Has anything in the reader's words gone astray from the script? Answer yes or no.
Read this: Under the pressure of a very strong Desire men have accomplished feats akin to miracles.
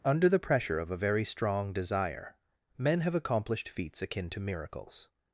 no